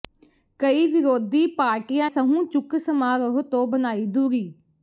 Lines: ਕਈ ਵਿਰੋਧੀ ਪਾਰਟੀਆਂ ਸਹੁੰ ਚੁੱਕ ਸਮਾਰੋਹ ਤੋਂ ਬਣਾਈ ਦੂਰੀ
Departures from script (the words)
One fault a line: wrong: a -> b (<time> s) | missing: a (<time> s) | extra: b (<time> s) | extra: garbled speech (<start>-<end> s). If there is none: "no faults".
no faults